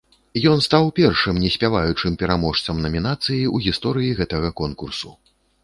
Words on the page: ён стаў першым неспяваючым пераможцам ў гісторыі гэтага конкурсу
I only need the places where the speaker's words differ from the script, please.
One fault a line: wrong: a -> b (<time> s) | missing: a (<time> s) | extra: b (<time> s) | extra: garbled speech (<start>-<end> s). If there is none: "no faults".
extra: намінацыі (2.9 s)